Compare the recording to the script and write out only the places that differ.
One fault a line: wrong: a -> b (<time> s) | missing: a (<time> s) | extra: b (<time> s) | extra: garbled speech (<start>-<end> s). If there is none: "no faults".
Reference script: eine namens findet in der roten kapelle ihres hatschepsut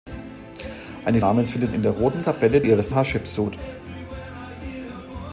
no faults